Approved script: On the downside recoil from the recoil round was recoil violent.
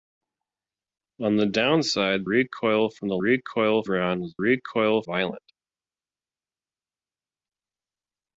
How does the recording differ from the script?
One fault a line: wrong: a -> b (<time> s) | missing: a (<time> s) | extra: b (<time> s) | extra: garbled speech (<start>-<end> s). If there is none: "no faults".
no faults